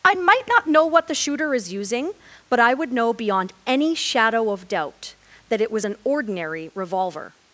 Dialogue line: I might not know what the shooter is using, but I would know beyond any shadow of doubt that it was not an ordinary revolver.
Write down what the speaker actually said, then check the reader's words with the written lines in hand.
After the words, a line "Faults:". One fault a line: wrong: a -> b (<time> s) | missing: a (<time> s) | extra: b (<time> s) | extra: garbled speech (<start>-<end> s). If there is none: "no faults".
I might not know what the shooter is using, but I would know beyond any shadow of doubt that it was an ordinary revolver.
Faults:
missing: not (5.8 s)